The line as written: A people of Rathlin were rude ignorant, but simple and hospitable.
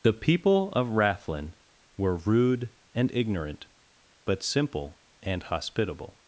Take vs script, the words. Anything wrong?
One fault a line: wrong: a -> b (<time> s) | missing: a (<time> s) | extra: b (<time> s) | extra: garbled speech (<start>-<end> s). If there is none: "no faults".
wrong: A -> The (0.0 s)
extra: and (3.0 s)